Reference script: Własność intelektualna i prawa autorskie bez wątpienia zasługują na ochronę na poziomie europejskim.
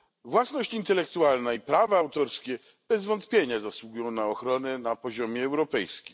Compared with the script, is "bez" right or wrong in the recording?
right